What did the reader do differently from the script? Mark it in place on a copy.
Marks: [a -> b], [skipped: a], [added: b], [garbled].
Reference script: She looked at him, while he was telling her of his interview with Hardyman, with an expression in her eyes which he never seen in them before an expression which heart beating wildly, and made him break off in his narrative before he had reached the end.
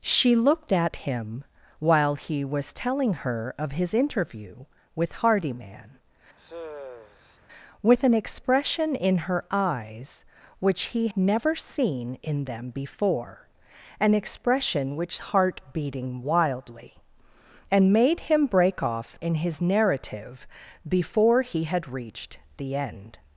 She looked at him, while he was telling her of his interview with Hardyman, with an expression in her eyes which he never seen in them before an expression which heart beating wildly, and made him break off in his narrative before he had reached the end.